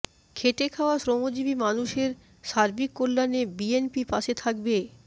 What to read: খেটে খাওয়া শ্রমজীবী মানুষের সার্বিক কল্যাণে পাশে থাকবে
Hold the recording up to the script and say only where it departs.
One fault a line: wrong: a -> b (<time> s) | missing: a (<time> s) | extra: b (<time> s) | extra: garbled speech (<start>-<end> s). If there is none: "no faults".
extra: বিএনপি (3.6 s)